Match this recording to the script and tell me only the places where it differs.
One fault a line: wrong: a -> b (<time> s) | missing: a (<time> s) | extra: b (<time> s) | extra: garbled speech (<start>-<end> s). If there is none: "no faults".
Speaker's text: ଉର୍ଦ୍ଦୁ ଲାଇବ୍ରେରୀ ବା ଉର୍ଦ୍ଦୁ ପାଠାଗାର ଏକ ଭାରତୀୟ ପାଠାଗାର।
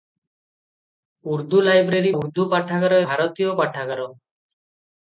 missing: ବା (2.1 s)
missing: ଏକ (3.0 s)